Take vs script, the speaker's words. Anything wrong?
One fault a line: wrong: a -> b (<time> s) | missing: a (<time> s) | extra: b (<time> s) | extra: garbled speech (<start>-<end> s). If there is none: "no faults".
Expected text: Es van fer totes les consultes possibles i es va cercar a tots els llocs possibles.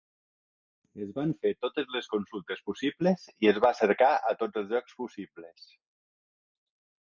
no faults